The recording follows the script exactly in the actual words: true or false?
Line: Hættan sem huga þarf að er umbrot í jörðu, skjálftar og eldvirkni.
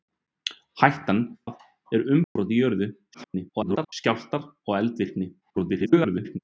false